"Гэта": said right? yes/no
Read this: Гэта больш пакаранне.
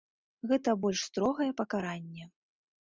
yes